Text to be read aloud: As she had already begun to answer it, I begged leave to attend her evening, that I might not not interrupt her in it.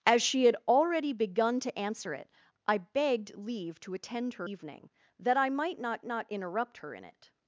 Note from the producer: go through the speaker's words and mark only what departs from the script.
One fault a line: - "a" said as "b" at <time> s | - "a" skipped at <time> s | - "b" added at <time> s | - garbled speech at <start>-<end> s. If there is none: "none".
none